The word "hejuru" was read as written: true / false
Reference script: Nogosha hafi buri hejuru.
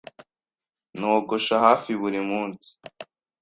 false